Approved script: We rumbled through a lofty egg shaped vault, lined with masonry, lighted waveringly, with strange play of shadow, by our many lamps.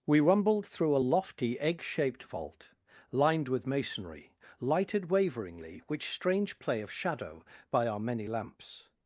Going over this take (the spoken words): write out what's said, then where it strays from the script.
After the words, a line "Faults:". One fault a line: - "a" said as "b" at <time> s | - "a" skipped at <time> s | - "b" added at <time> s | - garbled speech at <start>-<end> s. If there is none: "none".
We rumbled through a lofty egg shaped vault, lined with masonry, lighted waveringly, which strange play of shadow, by our many lamps.
Faults:
- "with" said as "which" at 5.9 s